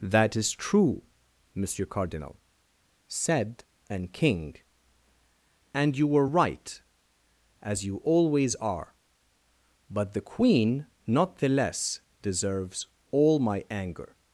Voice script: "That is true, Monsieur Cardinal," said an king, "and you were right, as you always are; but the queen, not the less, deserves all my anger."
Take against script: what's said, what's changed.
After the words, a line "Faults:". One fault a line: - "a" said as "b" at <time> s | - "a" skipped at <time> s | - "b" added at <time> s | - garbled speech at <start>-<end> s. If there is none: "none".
"That is true, Monsieur Cardinal," said an king, "and you were right, as you always are; but the queen, not the less, deserves all my anger."
Faults:
none